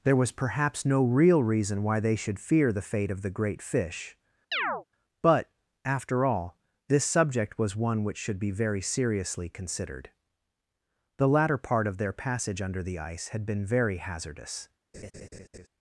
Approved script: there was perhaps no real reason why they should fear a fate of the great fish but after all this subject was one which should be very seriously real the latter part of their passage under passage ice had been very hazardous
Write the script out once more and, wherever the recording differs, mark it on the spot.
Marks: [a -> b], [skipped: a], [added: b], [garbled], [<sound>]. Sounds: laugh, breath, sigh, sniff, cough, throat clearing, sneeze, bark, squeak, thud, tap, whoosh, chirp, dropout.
there was perhaps no real reason why they should fear [a -> the] fate of the great fish [chirp] but after all this subject was one which should be very seriously [real -> considered] the latter part of their passage under [passage -> the] ice had been very hazardous [laugh]